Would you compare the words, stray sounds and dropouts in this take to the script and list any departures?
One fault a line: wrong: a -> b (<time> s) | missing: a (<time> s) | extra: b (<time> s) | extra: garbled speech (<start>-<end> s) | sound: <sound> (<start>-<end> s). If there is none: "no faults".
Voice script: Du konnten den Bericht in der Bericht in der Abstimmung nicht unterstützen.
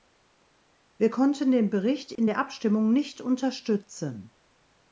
wrong: Du -> Wir (1.0 s)
sound: dropout (2.2-2.2 s)
missing: Bericht in der (2.4 s)